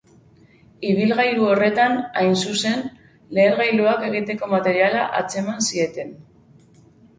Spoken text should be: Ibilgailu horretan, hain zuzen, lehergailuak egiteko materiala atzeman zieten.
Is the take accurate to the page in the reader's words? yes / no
yes